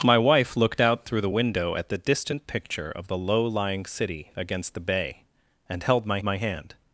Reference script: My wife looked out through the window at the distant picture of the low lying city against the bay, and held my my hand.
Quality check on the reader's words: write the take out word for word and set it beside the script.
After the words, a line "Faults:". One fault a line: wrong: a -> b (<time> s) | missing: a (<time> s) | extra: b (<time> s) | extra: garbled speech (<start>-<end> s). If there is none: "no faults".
My wife looked out through the window at the distant picture of the low lying city against the bay, and held my my hand.
Faults:
no faults